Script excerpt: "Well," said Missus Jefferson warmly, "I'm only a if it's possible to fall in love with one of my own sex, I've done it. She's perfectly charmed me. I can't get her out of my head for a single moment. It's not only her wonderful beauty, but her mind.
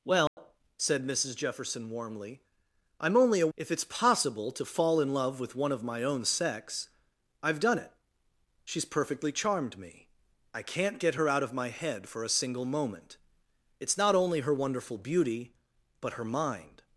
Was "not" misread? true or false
false